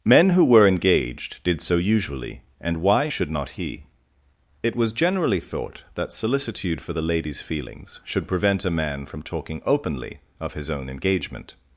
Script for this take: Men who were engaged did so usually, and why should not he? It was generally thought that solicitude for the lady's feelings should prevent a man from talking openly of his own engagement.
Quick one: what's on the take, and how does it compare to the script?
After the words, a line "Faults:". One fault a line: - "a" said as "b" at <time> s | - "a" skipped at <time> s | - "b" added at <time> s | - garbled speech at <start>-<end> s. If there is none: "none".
Men who were engaged did so usually, and why should not he? It was generally thought that solicitude for the lady's feelings should prevent a man from talking openly of his own engagement.
Faults:
none